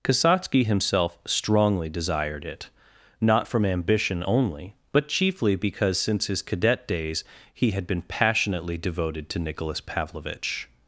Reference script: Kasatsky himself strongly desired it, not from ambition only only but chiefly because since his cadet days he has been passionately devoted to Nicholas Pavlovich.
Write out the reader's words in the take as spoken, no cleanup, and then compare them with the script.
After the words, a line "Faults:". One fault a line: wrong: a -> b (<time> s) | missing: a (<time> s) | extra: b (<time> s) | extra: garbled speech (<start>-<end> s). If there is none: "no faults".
Kasatsky himself strongly desired it, not from ambition only but chiefly because since his cadet days he had been passionately devoted to Nicholas Pavlovich.
Faults:
missing: only (4.8 s)
wrong: has -> had (7.7 s)